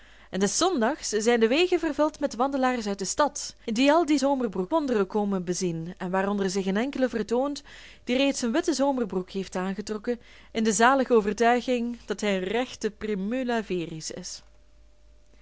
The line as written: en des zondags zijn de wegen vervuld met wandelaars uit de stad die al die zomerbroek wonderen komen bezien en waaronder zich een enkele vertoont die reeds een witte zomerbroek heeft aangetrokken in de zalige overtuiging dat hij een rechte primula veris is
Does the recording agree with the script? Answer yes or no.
yes